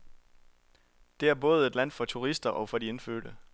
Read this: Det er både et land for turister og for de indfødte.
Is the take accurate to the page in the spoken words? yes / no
yes